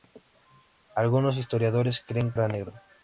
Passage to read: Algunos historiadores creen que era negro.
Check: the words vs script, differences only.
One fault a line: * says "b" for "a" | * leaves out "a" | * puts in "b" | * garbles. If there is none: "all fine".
* leaves out "que"